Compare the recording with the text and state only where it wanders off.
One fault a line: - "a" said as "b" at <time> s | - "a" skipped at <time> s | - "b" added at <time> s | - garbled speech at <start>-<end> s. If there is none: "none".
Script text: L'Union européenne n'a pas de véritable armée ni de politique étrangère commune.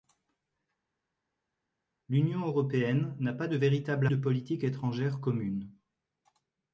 - "armée ni" skipped at 4.1 s